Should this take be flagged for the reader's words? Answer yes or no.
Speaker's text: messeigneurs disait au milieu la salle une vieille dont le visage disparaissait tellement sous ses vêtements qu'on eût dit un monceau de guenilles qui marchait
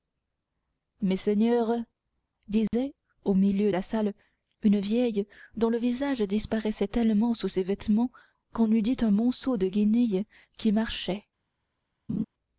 no